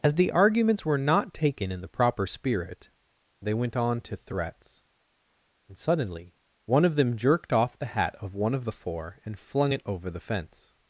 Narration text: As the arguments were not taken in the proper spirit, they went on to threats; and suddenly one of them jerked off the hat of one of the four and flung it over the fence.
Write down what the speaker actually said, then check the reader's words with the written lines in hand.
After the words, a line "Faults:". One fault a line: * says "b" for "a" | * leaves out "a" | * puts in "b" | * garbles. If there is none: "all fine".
As the arguments were not taken in the proper spirit, they went on to threats; and suddenly one of them jerked off the hat of one of the four and flung it over the fence.
Faults:
all fine